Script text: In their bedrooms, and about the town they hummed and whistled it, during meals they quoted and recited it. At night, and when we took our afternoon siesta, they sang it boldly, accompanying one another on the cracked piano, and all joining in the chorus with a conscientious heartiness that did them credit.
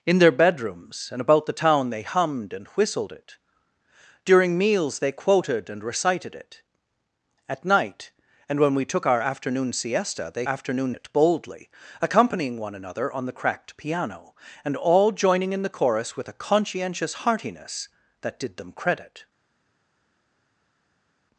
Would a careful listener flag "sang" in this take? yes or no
yes